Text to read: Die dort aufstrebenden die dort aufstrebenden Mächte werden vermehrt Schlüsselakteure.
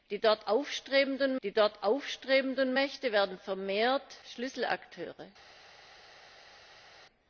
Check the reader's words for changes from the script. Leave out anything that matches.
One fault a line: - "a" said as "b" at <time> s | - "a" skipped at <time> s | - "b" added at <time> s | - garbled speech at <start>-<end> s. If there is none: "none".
none